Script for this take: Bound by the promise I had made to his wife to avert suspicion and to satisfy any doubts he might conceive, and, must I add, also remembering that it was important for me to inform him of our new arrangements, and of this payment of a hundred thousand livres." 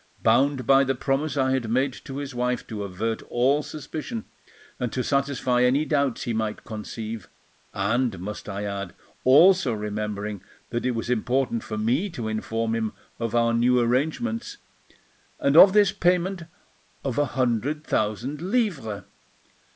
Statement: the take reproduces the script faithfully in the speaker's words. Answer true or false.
false